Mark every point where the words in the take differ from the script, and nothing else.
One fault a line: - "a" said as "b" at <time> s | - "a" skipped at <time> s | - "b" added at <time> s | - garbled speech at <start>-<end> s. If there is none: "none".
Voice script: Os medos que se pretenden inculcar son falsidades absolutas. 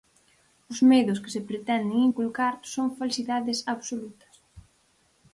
none